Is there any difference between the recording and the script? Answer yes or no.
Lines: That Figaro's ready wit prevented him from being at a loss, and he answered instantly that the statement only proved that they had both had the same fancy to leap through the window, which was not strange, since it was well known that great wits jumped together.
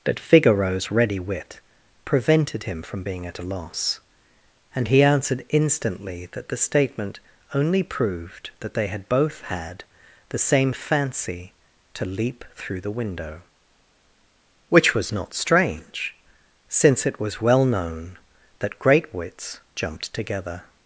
no